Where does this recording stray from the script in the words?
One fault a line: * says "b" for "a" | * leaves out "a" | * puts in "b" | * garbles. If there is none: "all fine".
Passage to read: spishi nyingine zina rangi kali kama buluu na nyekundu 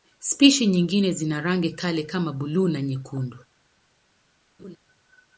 all fine